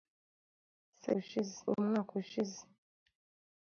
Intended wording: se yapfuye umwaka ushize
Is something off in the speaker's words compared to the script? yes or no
yes